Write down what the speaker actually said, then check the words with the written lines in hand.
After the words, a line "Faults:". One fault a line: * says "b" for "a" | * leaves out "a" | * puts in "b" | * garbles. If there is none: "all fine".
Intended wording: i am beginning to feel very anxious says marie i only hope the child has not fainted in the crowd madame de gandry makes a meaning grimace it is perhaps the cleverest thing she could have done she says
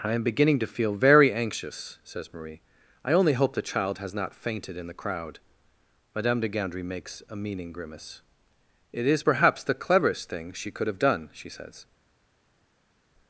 i am beginning to feel very anxious says marie i only hope the child has not fainted in the crowd madame de gandry makes a meaning grimace it is perhaps the cleverest thing she could have done she says
Faults:
all fine